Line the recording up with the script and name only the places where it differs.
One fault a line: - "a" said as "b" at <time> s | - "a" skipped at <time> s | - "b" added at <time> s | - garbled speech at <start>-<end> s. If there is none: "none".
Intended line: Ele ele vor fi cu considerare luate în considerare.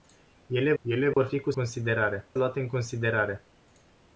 none